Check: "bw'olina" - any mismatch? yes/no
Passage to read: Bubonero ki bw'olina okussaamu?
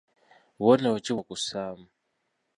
yes